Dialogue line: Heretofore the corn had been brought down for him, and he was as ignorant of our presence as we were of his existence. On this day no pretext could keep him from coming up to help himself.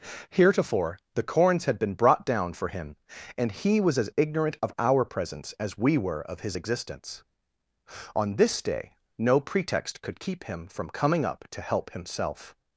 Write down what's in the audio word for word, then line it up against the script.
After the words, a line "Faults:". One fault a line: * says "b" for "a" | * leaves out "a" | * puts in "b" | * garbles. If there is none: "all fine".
Heretofore the corns had been brought down for him, and he was as ignorant of our presence as we were of his existence. On this day no pretext could keep him from coming up to help himself.
Faults:
* says "corns" for "corn"